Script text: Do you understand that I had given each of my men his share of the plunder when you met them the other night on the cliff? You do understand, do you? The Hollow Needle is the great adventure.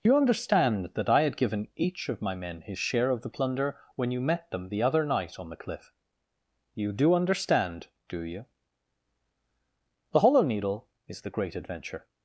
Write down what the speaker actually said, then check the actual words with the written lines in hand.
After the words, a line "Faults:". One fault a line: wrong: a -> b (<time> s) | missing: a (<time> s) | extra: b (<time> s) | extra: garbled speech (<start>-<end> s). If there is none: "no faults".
Do you understand that I had given each of my men his share of the plunder when you met them the other night on the cliff? You do understand, do you? The Hollow Needle is the great adventure.
Faults:
no faults